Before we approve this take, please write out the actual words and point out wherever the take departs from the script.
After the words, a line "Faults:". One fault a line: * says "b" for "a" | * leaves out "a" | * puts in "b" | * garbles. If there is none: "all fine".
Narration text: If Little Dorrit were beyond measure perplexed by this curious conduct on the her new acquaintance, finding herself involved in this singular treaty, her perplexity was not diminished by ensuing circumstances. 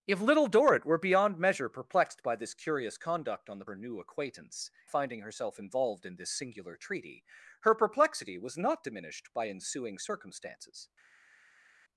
If Little Dorrit were beyond measure perplexed by this curious conduct on the her new acquaintance, finding herself involved in this singular treaty, her perplexity was not diminished by ensuing circumstances.
Faults:
all fine